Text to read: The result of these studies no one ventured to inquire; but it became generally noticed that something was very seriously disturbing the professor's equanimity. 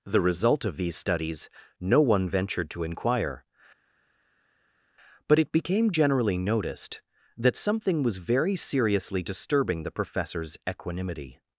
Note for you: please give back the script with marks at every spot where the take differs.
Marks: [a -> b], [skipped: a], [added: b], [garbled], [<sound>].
The result of these studies no one ventured to inquire; but it became generally noticed that something was very seriously disturbing the professor's equanimity.